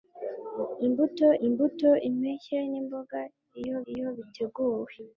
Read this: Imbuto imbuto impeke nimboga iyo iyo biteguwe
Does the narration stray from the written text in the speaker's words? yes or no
no